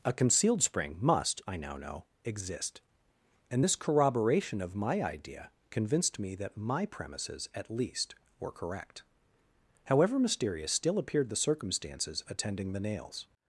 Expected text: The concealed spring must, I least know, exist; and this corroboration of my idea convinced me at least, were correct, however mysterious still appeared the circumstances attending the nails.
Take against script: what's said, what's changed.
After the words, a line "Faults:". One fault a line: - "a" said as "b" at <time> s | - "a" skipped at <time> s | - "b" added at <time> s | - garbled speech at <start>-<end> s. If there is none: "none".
A concealed spring must, I now know, exist; and this corroboration of my idea convinced me that my premises at least, were correct, however mysterious still appeared the circumstances attending the nails.
Faults:
- "The" said as "A" at 0.0 s
- "least" said as "now" at 1.6 s
- "that my premises" added at 6.4 s